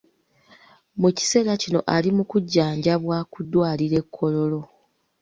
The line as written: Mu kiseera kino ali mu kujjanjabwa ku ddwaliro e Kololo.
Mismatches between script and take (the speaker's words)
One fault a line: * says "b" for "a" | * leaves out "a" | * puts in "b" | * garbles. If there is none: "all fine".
all fine